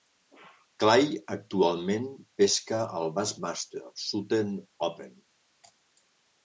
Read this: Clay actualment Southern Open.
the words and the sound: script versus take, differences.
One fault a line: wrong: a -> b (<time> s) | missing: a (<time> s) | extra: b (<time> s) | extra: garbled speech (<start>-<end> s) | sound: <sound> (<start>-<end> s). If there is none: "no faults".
extra: pesca al Bassmaster (2.4 s)